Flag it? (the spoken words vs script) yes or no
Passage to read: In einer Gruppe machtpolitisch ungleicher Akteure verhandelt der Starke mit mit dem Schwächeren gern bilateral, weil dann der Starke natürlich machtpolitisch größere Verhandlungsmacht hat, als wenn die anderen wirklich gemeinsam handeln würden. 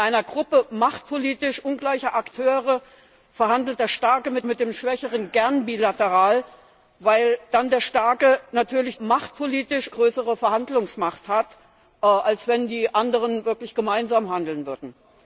no